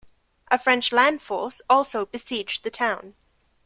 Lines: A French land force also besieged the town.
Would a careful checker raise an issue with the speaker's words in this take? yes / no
no